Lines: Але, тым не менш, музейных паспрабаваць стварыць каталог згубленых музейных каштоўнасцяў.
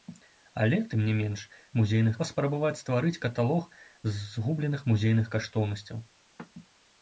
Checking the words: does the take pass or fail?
pass